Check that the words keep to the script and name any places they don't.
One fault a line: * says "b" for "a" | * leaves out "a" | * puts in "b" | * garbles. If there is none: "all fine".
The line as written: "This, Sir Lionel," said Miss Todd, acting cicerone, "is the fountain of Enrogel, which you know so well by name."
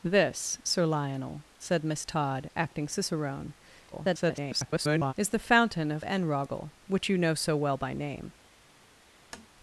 * garbles